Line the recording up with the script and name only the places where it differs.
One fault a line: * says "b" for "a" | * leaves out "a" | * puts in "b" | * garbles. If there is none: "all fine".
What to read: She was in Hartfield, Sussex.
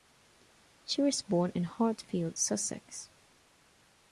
* puts in "born"